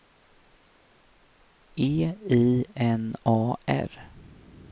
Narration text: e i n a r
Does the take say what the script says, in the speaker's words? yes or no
yes